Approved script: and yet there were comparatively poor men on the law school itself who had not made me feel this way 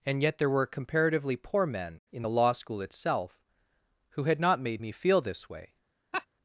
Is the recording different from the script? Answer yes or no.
yes